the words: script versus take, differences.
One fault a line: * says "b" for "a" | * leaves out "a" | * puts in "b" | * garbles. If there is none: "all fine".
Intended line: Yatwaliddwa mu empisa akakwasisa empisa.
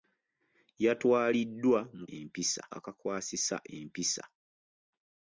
all fine